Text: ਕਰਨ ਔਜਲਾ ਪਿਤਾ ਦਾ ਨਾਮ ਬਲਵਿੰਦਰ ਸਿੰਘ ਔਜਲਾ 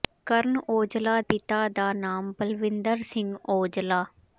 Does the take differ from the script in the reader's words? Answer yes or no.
no